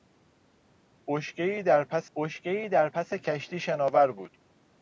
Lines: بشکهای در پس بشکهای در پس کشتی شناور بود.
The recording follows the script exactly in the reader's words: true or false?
true